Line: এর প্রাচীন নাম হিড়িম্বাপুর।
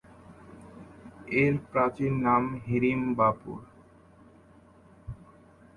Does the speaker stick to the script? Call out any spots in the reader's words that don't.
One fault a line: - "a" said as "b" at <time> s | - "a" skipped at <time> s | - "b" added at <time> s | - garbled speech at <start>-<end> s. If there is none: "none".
none